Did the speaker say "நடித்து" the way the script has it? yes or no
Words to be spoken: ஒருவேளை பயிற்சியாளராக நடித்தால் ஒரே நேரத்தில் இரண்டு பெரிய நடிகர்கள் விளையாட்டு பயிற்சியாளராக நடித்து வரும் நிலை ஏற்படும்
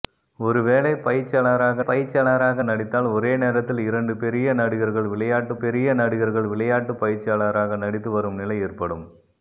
yes